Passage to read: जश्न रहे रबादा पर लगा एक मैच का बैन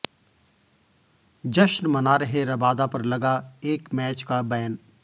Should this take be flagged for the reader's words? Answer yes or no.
yes